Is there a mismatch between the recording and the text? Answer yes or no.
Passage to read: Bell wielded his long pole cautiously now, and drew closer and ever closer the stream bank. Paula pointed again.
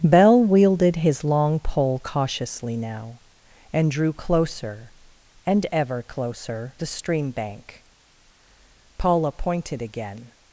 no